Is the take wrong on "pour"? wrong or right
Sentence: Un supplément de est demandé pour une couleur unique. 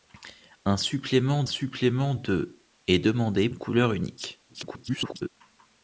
wrong